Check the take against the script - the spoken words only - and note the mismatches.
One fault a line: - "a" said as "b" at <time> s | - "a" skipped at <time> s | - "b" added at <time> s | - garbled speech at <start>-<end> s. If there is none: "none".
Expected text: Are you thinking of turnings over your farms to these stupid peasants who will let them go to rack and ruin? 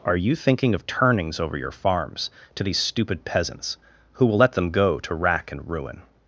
none